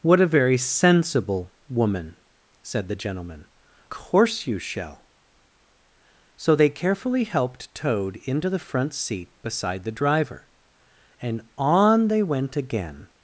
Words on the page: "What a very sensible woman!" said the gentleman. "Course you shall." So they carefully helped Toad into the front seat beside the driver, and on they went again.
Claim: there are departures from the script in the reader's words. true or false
false